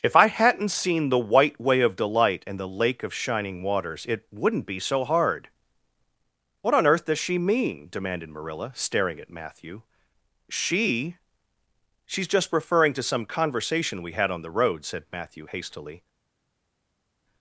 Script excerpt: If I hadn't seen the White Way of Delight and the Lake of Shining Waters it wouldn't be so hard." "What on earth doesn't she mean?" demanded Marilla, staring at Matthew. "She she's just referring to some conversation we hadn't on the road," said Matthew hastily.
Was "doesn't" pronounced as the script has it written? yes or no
no